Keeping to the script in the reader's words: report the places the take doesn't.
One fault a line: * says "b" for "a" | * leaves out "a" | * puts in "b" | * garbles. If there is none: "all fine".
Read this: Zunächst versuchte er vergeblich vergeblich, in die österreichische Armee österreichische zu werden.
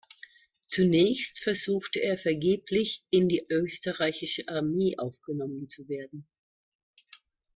* leaves out "vergeblich"
* says "aufgenommen" for "österreichische"